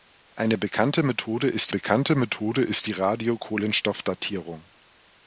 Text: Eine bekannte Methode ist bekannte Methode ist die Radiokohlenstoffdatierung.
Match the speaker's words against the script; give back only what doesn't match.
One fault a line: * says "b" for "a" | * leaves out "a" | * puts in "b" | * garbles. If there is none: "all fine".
all fine